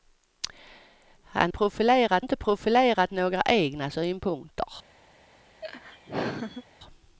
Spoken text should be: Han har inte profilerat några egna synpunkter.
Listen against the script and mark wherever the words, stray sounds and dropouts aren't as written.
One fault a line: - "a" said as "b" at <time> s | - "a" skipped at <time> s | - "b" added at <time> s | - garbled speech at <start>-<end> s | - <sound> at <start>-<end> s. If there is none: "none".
- "har" said as "profilerat" at 1.5 s
- laugh at 5.6-6.6 s